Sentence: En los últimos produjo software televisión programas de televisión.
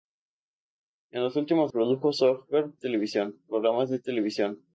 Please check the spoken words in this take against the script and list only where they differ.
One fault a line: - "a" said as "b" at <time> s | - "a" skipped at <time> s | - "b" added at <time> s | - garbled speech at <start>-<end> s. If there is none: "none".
none